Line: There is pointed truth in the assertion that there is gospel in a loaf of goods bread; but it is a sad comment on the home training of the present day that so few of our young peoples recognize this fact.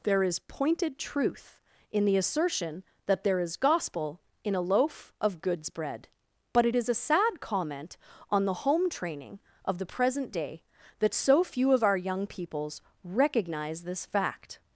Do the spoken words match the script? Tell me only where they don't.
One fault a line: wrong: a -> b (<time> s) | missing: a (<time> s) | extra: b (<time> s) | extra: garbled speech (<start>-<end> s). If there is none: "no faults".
no faults